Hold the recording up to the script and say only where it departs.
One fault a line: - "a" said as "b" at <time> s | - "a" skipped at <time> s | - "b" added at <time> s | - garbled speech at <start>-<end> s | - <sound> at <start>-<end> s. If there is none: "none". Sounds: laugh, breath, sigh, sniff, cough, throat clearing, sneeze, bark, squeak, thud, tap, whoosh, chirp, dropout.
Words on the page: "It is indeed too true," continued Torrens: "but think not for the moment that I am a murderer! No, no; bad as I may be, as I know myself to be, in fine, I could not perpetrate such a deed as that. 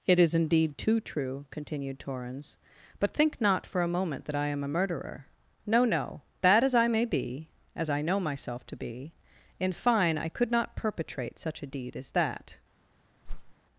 - "the" said as "a" at 3.8 s
- whoosh at 13.3-13.5 s